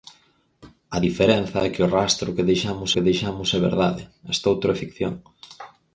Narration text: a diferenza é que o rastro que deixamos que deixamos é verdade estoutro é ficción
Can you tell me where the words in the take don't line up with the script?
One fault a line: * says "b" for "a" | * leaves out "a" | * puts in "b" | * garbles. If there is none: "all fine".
all fine